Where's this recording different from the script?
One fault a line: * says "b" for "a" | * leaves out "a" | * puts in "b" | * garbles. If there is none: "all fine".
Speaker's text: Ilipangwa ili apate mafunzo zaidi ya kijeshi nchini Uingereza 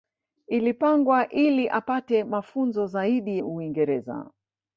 * leaves out "ya kijeshi nchini"